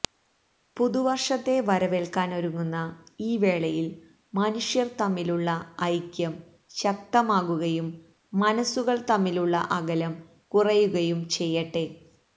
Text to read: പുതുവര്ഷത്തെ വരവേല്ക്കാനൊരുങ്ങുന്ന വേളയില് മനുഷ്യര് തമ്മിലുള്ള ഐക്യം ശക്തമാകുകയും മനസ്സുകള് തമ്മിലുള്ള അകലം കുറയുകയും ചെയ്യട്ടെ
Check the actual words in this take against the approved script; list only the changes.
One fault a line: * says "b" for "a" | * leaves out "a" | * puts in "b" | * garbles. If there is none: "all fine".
* puts in "ഈ"